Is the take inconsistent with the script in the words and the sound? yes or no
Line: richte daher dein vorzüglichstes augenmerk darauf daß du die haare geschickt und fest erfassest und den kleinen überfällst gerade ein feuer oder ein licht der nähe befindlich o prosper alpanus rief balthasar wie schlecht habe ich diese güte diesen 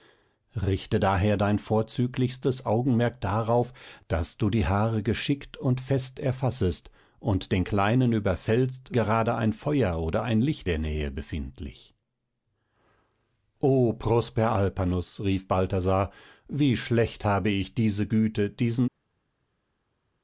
no